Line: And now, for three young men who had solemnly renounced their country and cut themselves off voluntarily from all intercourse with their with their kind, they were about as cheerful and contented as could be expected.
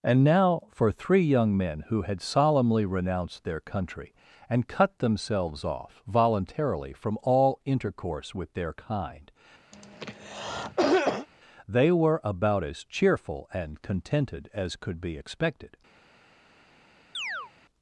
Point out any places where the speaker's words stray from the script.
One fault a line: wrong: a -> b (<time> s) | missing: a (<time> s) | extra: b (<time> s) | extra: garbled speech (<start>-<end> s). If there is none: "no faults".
missing: with their (8.7 s)